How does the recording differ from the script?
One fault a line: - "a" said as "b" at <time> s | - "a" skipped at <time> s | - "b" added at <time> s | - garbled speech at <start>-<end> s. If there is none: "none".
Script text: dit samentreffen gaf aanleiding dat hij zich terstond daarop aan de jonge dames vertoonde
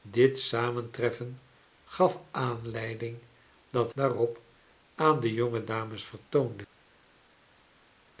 - "hij zich terstond" skipped at 3.9 s